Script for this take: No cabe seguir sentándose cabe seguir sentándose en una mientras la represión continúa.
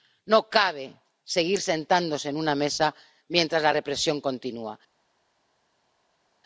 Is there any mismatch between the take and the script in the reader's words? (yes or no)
yes